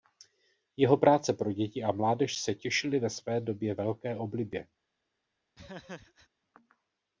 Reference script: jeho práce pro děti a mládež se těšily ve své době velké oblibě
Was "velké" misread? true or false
false